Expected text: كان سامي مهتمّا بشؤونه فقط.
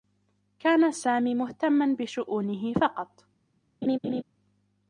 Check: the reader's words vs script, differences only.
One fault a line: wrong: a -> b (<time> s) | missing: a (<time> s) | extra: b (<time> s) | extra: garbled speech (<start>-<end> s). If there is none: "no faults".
no faults